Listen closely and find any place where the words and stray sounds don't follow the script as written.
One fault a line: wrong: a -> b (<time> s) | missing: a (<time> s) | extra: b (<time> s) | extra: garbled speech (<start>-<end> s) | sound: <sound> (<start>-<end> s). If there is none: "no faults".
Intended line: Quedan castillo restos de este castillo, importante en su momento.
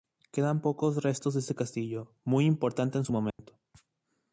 wrong: castillo -> pocos (0.6 s)
extra: muy (2.2 s)
sound: dropout (3.3-3.4 s)